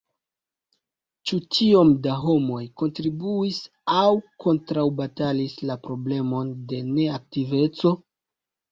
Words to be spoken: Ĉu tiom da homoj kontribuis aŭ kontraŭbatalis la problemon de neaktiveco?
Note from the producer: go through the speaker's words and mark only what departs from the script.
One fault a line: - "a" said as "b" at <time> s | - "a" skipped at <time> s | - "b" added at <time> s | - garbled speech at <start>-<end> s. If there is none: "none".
none